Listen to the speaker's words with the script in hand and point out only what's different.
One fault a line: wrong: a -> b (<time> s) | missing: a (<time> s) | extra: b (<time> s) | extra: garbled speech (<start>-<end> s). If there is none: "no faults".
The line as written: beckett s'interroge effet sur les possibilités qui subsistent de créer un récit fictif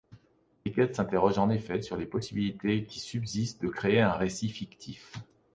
extra: en (1.4 s)